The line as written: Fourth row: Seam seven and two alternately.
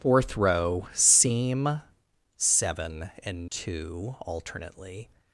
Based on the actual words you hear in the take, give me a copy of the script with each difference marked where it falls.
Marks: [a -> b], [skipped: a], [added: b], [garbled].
Fourth row: Seam seven and two alternately.